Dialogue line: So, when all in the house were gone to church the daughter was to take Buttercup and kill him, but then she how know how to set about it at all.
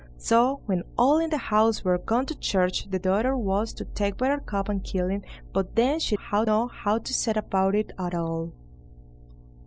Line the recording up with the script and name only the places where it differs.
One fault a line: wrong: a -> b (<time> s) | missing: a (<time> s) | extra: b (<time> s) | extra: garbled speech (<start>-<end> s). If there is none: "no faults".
no faults